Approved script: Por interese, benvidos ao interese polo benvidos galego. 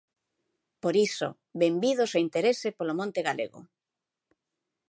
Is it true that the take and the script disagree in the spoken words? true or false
true